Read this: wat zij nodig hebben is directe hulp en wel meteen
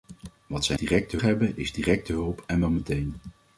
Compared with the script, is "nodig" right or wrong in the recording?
wrong